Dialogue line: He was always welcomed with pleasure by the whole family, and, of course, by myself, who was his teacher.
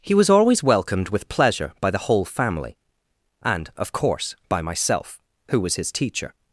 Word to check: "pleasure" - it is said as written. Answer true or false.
true